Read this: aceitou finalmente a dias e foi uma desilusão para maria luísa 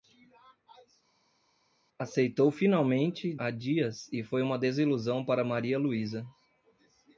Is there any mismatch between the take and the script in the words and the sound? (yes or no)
no